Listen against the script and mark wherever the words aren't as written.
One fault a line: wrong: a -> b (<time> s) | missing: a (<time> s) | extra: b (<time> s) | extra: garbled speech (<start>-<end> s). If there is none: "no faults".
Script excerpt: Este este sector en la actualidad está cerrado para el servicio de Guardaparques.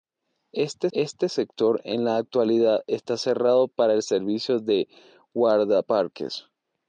no faults